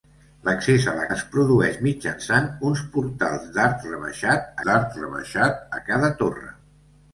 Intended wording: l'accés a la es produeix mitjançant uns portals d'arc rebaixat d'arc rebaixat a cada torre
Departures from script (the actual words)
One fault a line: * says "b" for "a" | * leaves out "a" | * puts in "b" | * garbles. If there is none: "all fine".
all fine